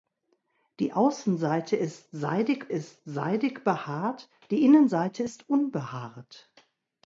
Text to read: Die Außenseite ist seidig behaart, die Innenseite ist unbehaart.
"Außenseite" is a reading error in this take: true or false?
false